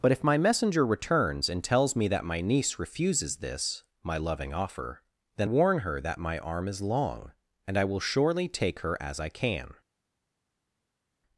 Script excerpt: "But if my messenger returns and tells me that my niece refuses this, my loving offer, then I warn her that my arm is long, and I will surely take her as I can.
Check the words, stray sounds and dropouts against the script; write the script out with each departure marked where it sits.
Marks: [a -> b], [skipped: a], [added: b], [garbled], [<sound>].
"But if my messenger returns and tells me that my niece refuses this, my loving offer, then [skipped: I] warn her that my arm is long, and I will surely take her as I can.